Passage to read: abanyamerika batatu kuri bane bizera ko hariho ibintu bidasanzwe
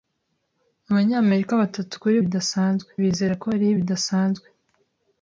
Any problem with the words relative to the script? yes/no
yes